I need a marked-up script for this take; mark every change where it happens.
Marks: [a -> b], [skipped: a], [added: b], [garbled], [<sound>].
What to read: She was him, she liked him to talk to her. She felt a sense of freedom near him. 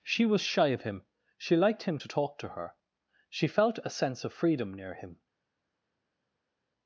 She was [added: shy of] him, she liked him to talk to her. She felt a sense of freedom near him.